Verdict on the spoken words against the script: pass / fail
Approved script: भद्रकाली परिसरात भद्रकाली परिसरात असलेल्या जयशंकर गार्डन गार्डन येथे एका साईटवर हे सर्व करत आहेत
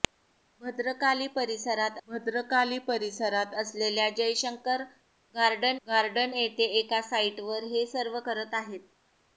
pass